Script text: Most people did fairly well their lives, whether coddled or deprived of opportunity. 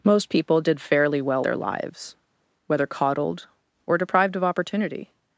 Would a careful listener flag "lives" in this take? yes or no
no